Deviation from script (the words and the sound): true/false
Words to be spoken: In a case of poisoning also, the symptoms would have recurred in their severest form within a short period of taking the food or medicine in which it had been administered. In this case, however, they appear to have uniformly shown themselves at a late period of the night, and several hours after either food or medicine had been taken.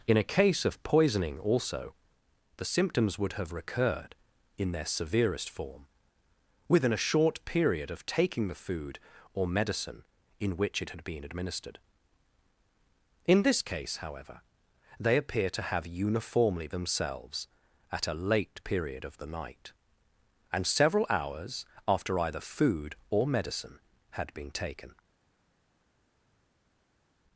true